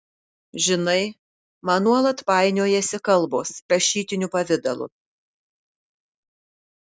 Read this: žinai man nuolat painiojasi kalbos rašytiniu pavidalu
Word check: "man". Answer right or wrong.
right